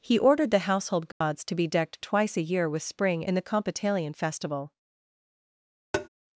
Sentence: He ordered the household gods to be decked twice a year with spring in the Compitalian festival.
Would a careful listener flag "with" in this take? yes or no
no